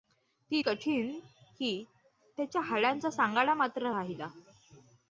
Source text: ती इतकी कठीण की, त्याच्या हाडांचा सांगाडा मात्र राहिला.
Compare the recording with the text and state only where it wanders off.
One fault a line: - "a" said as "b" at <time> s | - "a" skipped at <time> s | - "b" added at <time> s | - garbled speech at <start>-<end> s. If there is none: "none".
- "इतकी" skipped at 0.6 s